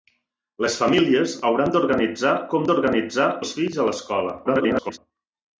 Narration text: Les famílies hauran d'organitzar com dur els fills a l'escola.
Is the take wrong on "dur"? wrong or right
wrong